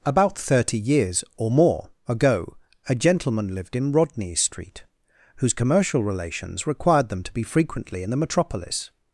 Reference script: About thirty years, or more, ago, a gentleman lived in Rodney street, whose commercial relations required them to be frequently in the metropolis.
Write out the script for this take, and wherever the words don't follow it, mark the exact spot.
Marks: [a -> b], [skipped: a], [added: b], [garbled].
About thirty years, or more, ago, a gentleman lived in Rodney street, whose commercial relations required them to be frequently in the metropolis.